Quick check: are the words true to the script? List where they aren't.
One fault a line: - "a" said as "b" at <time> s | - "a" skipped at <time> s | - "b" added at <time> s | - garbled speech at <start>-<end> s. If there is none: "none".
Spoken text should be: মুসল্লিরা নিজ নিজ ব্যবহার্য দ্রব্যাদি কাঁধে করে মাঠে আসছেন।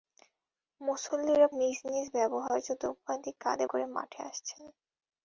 none